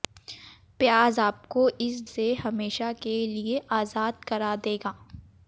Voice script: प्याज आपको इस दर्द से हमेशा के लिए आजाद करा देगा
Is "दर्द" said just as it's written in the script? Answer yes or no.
no